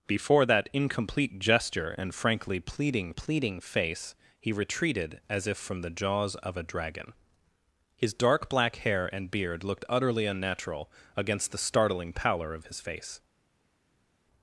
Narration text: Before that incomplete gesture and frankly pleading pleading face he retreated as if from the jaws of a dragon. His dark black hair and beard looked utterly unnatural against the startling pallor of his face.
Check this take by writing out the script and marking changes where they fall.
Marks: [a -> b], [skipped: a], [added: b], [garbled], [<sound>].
Before that incomplete gesture and frankly pleading pleading face he retreated as if from the jaws of a dragon. His dark black hair and beard looked utterly unnatural against the startling pallor of his face.